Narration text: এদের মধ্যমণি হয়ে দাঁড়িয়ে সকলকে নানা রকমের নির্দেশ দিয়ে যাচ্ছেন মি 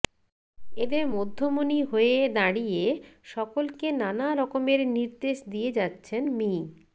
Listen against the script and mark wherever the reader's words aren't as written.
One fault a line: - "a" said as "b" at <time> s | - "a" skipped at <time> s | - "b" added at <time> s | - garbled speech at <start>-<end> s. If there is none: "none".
none